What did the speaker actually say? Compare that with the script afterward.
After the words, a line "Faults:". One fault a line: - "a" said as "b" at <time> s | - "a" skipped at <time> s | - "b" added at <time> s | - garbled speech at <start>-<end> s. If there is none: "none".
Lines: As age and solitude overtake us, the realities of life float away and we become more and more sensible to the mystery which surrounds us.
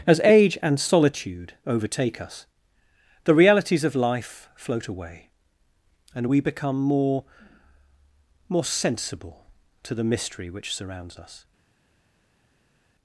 As age and solitude overtake us, the realities of life float away and we become more more sensible to the mystery which surrounds us.
Faults:
- "and" skipped at 7.2 s